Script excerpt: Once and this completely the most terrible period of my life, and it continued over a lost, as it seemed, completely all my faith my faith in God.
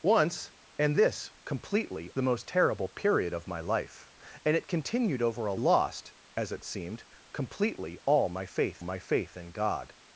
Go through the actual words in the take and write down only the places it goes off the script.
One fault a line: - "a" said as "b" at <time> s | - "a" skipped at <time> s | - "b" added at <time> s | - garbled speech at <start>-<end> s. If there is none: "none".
none